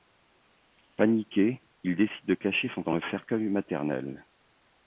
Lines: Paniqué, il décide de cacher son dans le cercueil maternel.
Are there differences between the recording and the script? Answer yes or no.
no